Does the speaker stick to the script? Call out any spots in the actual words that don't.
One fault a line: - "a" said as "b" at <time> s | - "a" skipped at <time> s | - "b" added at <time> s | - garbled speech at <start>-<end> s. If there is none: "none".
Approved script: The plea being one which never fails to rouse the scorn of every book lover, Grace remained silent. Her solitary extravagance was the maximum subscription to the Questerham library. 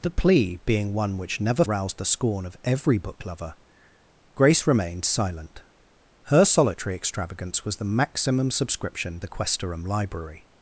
- "fails to" skipped at 1.6 s
- "to" skipped at 9.2 s